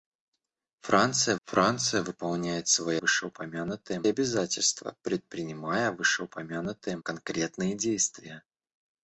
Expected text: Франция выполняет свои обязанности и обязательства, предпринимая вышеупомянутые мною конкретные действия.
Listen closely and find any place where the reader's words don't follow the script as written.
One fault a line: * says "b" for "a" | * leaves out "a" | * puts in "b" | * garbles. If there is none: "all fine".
* puts in "франция"
* says "вышеупомянутые" for "обязанности"
* leaves out "мною"